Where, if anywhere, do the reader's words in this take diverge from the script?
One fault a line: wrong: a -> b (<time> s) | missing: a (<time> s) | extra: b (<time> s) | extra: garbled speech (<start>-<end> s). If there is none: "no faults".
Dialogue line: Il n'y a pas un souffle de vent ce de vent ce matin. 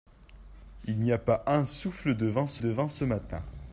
no faults